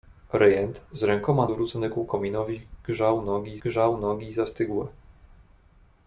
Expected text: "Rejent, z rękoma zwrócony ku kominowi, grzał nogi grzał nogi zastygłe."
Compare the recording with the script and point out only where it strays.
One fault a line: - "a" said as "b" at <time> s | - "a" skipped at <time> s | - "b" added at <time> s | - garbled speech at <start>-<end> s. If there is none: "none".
none